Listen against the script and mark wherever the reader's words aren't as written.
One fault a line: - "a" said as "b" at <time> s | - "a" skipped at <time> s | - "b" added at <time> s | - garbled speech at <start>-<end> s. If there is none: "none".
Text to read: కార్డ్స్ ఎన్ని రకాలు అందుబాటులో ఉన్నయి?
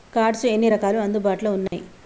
none